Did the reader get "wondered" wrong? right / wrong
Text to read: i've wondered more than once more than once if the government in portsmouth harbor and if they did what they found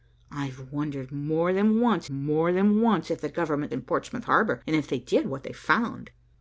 right